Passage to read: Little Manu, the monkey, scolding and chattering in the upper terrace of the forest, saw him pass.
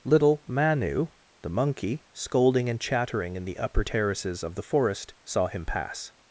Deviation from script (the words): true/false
true